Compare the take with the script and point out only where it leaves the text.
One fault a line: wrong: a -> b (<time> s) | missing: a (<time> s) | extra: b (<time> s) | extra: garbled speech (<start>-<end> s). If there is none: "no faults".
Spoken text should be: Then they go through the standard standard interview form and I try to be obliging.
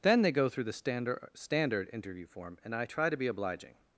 no faults